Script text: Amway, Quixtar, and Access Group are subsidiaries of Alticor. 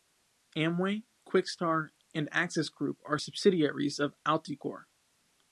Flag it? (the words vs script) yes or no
no